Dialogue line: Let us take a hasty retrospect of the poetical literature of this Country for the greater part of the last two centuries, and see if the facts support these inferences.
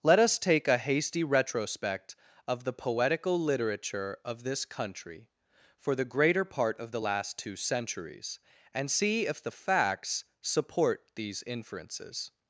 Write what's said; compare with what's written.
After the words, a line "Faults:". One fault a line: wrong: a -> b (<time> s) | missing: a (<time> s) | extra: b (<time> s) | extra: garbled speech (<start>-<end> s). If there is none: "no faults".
Let us take a hasty retrospect of the poetical literature of this Country for the greater part of the last two centuries, and see if the facts support these inferences.
Faults:
no faults